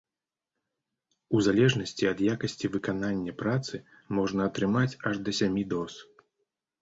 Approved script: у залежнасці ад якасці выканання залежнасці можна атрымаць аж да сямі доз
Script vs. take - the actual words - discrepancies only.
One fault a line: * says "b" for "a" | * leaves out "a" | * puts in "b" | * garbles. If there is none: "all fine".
* says "працы" for "залежнасці"